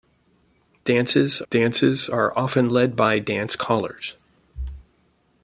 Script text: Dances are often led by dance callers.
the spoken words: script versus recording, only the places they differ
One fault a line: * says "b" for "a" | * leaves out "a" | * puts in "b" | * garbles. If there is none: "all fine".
* puts in "dances"